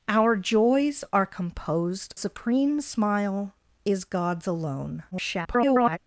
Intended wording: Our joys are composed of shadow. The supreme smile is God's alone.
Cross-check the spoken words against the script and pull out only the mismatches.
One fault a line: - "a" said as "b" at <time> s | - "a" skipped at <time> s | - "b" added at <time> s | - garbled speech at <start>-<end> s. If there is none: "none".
- "of shadow The" skipped at 2.1 s
- garbled speech at 5.1-6.0 s